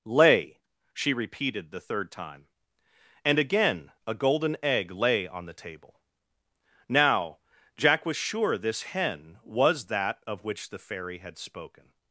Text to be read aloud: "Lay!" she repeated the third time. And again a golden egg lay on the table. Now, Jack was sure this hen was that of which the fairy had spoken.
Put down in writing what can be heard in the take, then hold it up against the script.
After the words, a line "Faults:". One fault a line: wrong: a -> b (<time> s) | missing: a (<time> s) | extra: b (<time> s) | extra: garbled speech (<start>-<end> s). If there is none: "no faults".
"Lay!" she repeated the third time. And again a golden egg lay on the table. Now, Jack was sure this hen was that of which the fairy had spoken.
Faults:
no faults